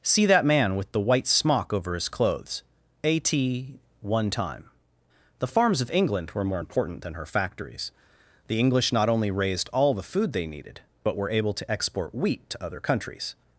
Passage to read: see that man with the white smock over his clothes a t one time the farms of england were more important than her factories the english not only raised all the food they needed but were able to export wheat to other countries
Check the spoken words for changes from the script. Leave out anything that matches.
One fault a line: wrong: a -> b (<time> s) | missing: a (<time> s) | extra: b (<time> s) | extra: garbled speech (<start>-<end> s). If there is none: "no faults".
no faults